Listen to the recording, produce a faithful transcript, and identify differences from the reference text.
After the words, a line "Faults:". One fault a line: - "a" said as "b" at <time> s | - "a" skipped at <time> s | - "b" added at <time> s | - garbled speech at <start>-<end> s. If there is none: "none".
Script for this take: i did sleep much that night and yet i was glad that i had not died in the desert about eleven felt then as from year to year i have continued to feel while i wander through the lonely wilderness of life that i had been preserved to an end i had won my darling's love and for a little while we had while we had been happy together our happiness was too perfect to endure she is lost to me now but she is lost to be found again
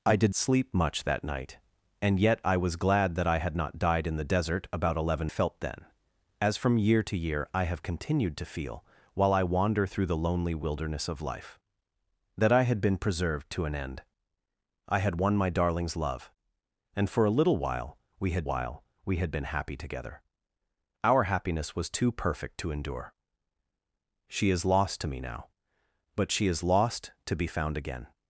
i did sleep much that night and yet i was glad that i had not died in the desert about eleven felt then as from year to year i have continued to feel while i wander through the lonely wilderness of life that i had been preserved to an end i had won my darling's love and for a little while we had while we had been happy together our happiness was too perfect to endure she is lost to me now but she is lost to be found again
Faults:
none